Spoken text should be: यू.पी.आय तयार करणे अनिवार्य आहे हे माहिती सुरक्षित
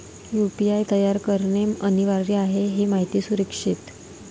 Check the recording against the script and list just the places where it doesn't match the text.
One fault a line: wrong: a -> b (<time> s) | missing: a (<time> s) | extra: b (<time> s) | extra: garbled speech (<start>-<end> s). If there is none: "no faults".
no faults